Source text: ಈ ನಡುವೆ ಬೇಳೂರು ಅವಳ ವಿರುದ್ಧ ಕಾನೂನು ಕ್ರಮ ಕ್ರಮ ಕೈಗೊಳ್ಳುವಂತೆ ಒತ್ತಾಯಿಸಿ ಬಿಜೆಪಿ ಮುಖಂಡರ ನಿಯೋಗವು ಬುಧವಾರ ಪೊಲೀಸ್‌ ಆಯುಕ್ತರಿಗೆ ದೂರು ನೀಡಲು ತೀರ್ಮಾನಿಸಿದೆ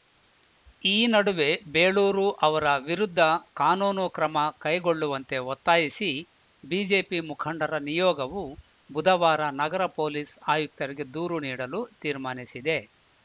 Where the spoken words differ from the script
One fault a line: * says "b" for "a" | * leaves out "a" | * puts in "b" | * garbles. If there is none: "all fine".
* says "ಅವರ" for "ಅವಳ"
* leaves out "ಕ್ರಮ"
* puts in "ನಗರ"